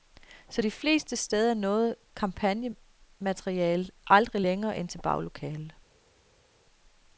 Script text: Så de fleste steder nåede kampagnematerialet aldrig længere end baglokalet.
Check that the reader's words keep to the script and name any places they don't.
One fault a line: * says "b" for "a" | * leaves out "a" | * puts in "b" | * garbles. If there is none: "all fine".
* puts in "til"